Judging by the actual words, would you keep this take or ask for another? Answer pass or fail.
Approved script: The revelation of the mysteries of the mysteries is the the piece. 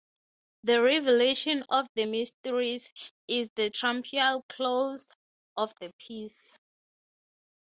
fail